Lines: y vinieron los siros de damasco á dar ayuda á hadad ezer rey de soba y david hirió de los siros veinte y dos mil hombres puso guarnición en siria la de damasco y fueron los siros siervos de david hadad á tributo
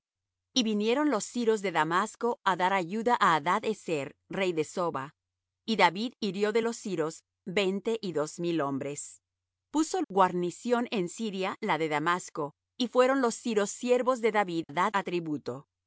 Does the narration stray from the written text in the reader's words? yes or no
no